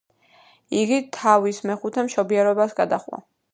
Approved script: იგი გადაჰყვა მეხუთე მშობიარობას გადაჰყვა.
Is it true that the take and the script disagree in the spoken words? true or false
true